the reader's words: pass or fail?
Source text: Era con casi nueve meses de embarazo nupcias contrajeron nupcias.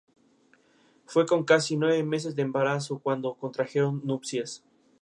fail